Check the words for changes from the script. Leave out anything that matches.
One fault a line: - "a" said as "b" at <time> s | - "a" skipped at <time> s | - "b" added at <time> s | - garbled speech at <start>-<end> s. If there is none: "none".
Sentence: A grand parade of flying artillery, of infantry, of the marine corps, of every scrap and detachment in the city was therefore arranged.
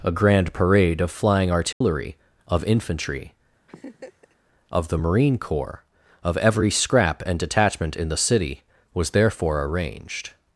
none